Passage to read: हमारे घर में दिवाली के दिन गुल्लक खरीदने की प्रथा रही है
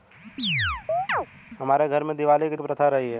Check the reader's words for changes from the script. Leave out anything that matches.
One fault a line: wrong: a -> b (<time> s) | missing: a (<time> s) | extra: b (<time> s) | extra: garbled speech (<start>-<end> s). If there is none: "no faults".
missing: दिन गुल्लक खरीदने (2.6 s)